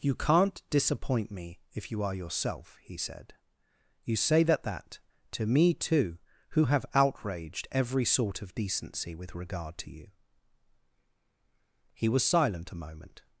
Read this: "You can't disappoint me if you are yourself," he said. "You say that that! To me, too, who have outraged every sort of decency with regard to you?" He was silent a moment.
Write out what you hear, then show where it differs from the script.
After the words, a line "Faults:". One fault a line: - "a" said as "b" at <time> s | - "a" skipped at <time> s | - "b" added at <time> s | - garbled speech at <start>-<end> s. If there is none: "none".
"You can't disappoint me if you are yourself," he said. "You say that that! To me, too, who have outraged every sort of decency with regard to you?" He was silent a moment.
Faults:
none